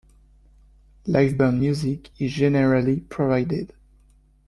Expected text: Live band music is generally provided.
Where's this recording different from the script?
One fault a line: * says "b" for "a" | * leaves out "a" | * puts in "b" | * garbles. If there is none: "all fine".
all fine